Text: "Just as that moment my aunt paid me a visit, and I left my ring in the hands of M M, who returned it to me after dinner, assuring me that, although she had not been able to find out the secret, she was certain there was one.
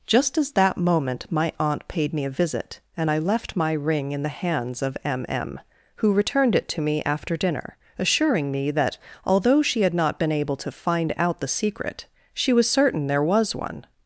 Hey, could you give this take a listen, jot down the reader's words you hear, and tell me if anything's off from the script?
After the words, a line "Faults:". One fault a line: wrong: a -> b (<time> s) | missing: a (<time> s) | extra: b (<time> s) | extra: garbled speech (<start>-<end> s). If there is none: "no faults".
"Just as that moment my aunt paid me a visit, and I left my ring in the hands of M M, who returned it to me after dinner, assuring me that, although she had not been able to find out the secret, she was certain there was one.
Faults:
no faults